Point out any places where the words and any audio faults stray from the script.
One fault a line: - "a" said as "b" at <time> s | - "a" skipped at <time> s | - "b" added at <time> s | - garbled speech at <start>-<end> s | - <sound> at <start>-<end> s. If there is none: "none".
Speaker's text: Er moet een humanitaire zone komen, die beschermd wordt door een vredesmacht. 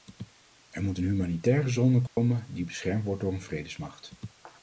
- dropout at 2.1-2.2 s